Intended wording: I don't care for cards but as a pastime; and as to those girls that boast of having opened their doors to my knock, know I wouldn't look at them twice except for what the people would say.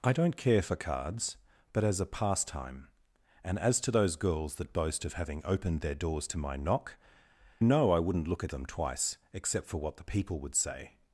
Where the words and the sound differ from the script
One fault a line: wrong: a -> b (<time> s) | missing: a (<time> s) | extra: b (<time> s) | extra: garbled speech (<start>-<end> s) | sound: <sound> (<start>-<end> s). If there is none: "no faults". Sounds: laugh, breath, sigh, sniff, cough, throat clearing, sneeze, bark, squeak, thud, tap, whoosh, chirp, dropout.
no faults